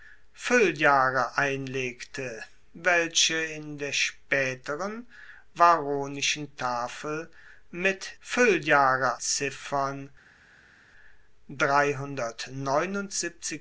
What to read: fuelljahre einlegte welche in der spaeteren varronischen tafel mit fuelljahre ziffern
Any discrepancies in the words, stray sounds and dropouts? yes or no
no